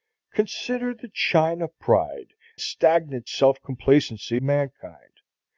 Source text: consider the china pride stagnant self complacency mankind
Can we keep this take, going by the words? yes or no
yes